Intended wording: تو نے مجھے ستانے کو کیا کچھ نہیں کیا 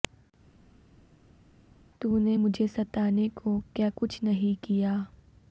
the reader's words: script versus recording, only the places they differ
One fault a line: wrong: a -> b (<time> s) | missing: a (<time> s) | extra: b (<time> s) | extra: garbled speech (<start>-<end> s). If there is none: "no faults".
no faults